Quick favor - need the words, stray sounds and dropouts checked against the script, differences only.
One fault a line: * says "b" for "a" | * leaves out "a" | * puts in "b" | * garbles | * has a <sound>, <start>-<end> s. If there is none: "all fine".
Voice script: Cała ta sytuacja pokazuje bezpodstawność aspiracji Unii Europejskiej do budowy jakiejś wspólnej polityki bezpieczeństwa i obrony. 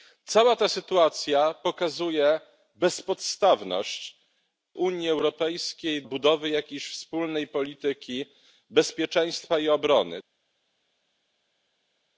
* leaves out "aspiracji"
* leaves out "do"